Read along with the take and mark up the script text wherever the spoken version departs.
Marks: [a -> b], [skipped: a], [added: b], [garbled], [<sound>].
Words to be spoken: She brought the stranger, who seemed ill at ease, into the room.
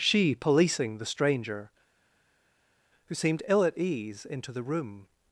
She [brought -> policing] the stranger, who seemed ill at ease, into the room.